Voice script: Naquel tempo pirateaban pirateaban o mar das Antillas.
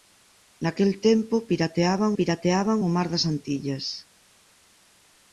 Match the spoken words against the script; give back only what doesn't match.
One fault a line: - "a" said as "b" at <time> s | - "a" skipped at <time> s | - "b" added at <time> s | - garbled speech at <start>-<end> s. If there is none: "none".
none